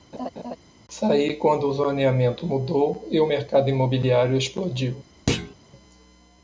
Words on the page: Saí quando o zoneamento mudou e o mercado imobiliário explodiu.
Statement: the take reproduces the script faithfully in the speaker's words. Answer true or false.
true